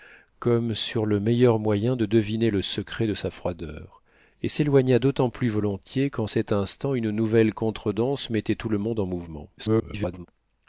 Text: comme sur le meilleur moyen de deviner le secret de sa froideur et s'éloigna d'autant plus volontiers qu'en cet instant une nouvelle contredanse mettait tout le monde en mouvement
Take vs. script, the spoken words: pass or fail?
fail